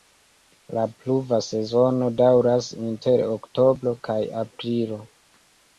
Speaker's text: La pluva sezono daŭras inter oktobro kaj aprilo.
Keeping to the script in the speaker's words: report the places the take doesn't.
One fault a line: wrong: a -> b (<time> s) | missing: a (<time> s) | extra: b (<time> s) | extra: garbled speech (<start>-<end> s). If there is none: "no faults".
no faults